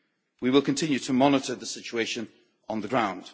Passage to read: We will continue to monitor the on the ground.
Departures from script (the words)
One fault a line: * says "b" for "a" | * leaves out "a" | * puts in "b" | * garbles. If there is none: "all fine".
* puts in "situation"